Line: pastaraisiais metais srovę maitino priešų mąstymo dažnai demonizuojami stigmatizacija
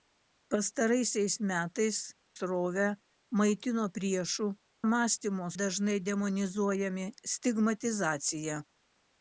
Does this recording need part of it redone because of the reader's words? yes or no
no